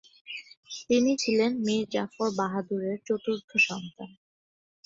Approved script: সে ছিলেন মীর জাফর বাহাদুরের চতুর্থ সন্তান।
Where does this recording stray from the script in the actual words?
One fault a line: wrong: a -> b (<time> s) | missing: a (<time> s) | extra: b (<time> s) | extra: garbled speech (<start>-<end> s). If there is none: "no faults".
wrong: সে -> তিনি (0.8 s)